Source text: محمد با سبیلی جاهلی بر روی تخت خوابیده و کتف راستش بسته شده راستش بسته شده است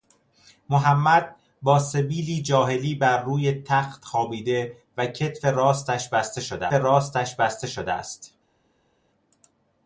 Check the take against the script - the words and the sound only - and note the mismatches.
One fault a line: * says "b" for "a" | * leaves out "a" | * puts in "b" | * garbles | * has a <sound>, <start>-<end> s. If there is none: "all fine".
all fine